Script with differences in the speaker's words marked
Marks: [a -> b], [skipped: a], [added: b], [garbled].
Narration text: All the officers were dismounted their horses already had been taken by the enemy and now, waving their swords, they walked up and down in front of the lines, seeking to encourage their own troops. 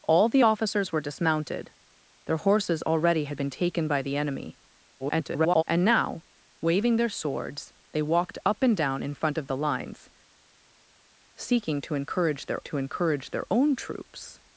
All the officers were dismounted their horses already had been taken by the enemy [garbled] and now, waving their swords, they walked up and down in front of the lines, seeking to encourage their [added: to encourage their] own troops.